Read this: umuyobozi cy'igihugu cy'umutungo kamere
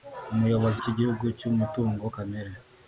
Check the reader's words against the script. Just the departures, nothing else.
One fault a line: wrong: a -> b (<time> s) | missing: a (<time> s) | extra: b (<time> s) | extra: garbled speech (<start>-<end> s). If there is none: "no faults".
no faults